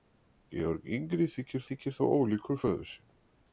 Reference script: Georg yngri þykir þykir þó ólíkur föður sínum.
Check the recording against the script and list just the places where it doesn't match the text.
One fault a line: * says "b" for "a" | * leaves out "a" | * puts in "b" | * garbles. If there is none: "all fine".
all fine